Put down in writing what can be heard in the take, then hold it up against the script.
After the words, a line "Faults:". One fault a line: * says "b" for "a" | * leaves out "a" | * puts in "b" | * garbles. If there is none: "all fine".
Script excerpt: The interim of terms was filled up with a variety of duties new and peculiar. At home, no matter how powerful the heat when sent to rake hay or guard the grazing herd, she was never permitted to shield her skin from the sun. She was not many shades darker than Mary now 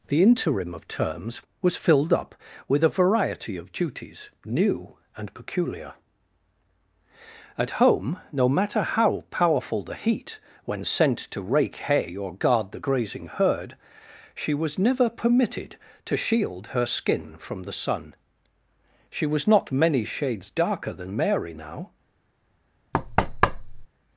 The interim of terms was filled up with a variety of duties new and peculiar. At home, no matter how powerful the heat when sent to rake hay or guard the grazing herd, she was never permitted to shield her skin from the sun. She was not many shades darker than Mary now
Faults:
all fine